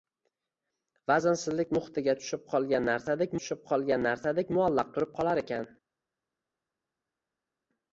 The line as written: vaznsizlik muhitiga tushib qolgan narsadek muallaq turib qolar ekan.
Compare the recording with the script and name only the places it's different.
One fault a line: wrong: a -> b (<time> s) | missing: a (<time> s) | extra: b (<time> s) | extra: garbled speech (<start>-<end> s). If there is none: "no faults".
extra: tushib qolgan narsadek (3.4 s)